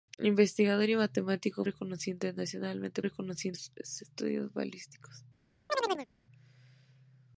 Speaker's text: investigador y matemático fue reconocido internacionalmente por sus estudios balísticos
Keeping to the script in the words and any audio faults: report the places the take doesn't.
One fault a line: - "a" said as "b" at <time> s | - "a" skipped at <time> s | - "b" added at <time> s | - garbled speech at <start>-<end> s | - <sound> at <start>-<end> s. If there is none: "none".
- "fue" skipped at 1.6 s
- "por" said as "reconocido" at 3.0 s
- chirp at 5.7-6.1 s